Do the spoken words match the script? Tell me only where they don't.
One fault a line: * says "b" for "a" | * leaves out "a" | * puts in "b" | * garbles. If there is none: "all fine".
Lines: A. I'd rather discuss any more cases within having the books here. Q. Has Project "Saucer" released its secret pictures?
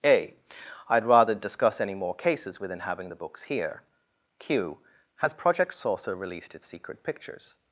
all fine